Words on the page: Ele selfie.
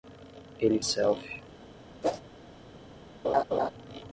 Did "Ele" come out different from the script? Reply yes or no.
no